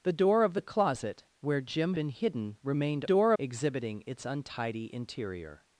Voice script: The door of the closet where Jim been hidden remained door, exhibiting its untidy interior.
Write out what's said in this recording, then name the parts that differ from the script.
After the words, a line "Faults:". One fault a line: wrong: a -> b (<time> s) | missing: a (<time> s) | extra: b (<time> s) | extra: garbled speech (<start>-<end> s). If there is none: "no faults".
The door of the closet where Jim been hidden remained door, exhibiting its untidy interior.
Faults:
no faults